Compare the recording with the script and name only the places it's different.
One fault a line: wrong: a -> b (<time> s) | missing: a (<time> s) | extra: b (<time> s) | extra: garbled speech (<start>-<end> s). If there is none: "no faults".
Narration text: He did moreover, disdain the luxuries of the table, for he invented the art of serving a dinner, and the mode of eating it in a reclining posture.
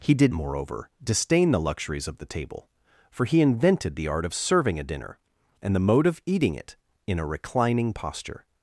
no faults